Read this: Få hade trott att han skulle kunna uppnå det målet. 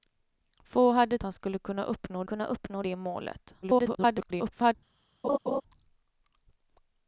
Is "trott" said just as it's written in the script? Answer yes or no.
no